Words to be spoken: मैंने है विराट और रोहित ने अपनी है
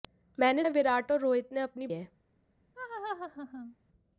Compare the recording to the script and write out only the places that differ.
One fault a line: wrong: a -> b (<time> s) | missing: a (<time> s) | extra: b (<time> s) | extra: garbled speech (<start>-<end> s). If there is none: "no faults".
no faults